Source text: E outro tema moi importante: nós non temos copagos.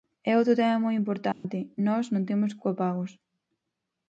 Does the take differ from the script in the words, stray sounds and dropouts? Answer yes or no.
yes